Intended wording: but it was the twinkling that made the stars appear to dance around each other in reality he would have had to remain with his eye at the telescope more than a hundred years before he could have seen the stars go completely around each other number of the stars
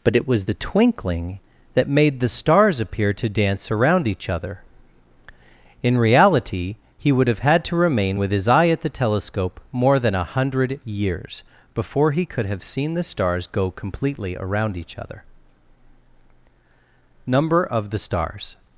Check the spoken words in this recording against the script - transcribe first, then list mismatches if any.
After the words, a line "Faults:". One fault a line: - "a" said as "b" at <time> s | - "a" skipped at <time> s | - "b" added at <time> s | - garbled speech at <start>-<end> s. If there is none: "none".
but it was the twinkling that made the stars appear to dance around each other in reality he would have had to remain with his eye at the telescope more than a hundred years before he could have seen the stars go completely around each other number of the stars
Faults:
none